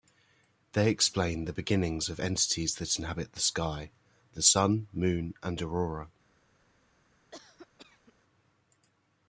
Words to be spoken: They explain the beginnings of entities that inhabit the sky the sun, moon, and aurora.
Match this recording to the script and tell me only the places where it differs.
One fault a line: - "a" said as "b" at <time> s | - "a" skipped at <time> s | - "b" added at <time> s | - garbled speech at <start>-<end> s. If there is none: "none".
none